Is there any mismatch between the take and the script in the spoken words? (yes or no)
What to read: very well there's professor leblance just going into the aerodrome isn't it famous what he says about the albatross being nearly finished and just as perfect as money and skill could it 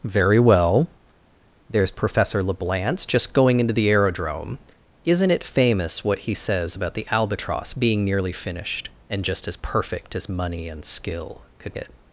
no